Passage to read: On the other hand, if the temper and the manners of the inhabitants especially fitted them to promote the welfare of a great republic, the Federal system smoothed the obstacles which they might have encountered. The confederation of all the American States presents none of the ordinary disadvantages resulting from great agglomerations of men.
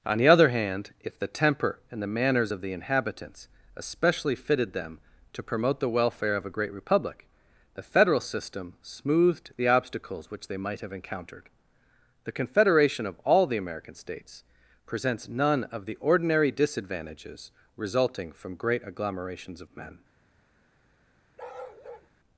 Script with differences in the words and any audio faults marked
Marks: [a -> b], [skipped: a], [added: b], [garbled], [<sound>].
On the other hand, if the temper and the manners of the inhabitants especially fitted them to promote the welfare of a great republic, the Federal system smoothed the obstacles which they might have encountered. The confederation of all the American States presents none of the ordinary disadvantages resulting from great agglomerations of men. [bark]